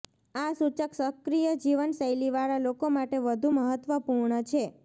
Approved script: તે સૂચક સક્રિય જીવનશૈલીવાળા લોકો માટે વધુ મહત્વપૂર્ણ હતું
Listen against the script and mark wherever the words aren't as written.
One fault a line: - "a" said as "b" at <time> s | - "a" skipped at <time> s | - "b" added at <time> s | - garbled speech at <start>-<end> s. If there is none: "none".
- "તે" said as "આ" at 0.3 s
- "હતું" said as "છે" at 4.5 s